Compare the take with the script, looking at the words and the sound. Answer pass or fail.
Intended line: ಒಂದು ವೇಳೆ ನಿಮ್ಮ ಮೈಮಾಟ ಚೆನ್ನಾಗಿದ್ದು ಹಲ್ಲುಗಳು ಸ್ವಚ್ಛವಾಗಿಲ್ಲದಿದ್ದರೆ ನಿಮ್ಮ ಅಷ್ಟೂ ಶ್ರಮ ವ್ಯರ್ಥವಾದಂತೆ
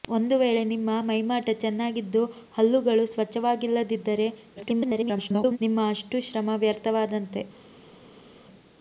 fail